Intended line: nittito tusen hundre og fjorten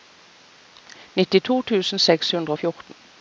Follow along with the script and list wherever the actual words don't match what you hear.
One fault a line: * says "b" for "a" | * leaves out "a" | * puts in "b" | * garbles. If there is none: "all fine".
* puts in "seks"